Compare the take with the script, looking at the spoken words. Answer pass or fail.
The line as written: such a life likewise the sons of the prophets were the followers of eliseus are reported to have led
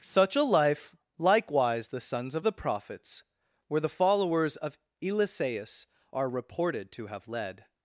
pass